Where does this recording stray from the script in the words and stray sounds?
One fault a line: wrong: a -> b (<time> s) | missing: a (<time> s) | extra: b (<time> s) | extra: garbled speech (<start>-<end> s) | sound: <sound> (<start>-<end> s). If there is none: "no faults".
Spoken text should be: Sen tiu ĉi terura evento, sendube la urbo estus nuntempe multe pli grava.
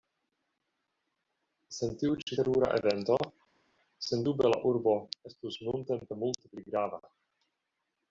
no faults